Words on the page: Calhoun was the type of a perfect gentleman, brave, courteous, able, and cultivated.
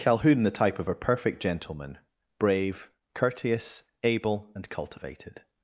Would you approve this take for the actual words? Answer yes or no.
no